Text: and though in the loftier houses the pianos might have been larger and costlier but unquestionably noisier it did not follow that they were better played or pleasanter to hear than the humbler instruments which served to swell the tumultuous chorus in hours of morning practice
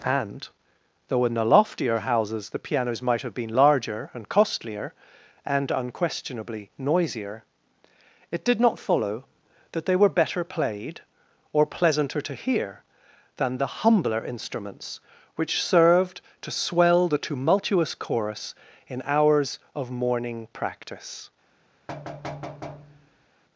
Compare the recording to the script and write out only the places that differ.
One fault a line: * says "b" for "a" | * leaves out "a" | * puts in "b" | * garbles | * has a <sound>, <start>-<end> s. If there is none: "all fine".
* says "and" for "but"
* has a thud, 21.9-23.3 s